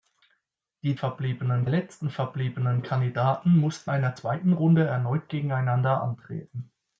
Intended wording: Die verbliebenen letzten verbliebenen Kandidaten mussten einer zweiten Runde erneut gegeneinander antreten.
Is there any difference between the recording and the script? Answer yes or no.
no